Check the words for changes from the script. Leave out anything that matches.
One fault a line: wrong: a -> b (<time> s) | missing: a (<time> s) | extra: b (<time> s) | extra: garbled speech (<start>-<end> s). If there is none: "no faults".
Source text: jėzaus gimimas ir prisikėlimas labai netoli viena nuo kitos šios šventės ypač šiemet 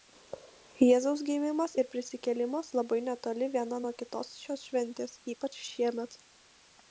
no faults